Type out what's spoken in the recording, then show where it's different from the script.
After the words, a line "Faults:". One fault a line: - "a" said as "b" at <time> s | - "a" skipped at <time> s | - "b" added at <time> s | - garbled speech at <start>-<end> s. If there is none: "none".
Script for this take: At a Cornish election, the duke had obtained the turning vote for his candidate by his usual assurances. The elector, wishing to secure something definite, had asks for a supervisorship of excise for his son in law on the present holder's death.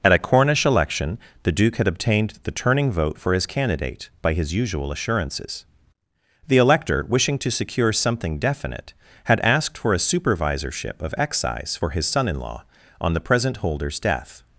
At a Cornish election, the duke had obtained the turning vote for his candidate by his usual assurances. The elector, wishing to secure something definite, had asked for a supervisorship of excise for his son in law on the present holder's death.
Faults:
- "asks" said as "asked" at 9.4 s